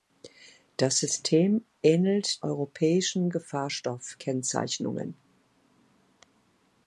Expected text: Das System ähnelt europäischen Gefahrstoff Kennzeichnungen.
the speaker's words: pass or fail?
pass